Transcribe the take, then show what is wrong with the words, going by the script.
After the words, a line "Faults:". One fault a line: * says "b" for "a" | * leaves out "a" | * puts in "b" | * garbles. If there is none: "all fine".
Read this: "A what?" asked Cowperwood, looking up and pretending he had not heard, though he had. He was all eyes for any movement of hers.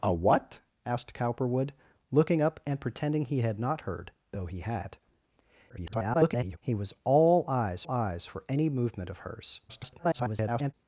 "A what?" asked Cowperwood, looking up and pretending he had not heard, though he had. [garbled] He was all eyes eyes for any movement of hers. [garbled]
Faults:
* garbles
* puts in "eyes"
* garbles